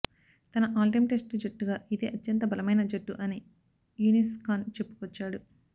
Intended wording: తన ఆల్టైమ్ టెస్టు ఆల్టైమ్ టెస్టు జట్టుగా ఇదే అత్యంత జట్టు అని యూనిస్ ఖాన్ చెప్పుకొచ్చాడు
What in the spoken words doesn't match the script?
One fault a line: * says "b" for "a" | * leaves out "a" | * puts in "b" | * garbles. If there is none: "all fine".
* leaves out "ఆల్టైమ్ టెస్టు"
* puts in "బలమైన"